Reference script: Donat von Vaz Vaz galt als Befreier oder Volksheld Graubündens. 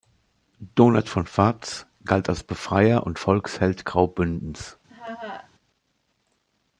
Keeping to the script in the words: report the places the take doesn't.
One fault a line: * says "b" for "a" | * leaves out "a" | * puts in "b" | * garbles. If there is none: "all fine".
* leaves out "Vaz"
* says "und" for "oder"